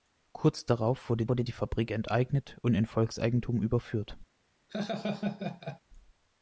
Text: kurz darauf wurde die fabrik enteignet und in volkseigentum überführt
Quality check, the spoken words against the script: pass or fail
fail